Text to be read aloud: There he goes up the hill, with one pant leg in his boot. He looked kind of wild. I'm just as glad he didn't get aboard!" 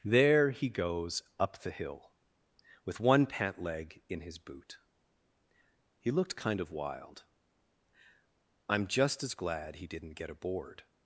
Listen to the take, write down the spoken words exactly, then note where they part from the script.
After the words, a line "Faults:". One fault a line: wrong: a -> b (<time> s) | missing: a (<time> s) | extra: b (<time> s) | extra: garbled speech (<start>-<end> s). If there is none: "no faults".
There he goes up the hill, with one pant leg in his boot. He looked kind of wild. I'm just as glad he didn't get aboard!"
Faults:
no faults